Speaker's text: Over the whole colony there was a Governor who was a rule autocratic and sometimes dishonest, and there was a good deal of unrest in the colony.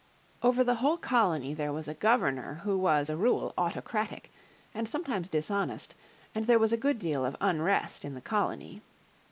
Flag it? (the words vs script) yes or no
no